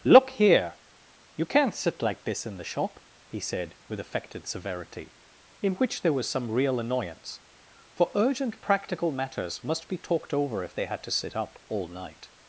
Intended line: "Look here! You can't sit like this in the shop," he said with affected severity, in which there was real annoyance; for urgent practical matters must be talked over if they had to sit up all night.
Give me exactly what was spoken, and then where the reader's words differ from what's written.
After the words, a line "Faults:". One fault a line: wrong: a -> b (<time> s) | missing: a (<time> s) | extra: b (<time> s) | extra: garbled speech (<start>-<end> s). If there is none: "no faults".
"Look here! You can't sit like this in the shop," he said with affected severity, in which there was some real annoyance; for urgent practical matters must be talked over if they had to sit up all night.
Faults:
extra: some (6.3 s)